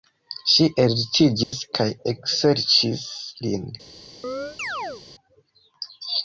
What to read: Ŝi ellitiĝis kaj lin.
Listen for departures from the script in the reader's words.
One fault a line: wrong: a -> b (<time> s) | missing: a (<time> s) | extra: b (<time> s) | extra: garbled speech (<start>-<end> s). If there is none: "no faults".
extra: ekserĉis (2.1 s)